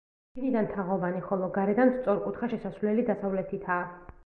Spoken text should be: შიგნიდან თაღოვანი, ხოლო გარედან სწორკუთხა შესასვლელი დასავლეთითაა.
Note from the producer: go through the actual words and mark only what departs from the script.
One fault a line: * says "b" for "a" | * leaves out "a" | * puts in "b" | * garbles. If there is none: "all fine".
all fine